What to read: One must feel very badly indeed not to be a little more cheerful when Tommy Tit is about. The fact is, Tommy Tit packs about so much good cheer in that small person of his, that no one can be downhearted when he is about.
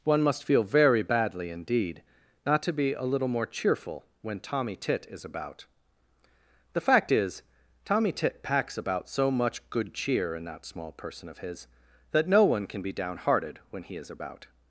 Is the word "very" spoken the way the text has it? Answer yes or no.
yes